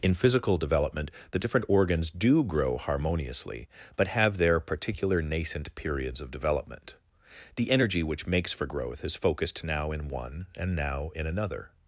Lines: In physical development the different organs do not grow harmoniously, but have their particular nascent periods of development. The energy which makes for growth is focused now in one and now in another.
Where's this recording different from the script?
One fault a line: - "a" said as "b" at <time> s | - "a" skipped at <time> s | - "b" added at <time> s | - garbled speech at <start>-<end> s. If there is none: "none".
- "not" skipped at 2.4 s